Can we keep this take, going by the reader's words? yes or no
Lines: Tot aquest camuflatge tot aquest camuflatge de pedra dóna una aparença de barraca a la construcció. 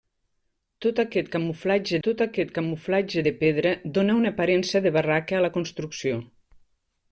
yes